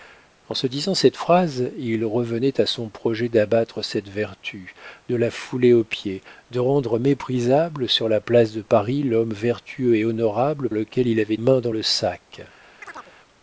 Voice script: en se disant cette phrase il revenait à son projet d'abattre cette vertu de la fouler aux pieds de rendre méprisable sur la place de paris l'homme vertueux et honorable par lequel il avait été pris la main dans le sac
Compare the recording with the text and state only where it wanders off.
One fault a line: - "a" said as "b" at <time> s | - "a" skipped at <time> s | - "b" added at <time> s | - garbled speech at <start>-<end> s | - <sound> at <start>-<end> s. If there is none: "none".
- "par" skipped at 10.7 s
- "été pris la" skipped at 11.4 s
- chirp at 12.8-13.1 s